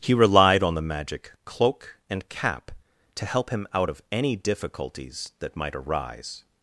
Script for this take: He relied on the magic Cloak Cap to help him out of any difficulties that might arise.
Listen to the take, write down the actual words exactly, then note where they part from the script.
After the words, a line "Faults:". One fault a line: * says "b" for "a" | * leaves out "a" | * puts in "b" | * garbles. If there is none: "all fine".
He relied on the magic Cloak and Cap to help him out of any difficulties that might arise.
Faults:
* puts in "and"